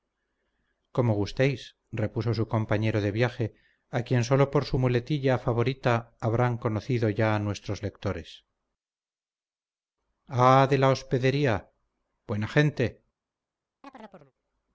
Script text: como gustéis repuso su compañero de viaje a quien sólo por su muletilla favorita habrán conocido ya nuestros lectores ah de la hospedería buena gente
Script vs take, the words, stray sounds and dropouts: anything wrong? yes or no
yes